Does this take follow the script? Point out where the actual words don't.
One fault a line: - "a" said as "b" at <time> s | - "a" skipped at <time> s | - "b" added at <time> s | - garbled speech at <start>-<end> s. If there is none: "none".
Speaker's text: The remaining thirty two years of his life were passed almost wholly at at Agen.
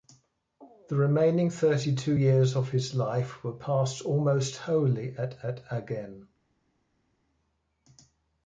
none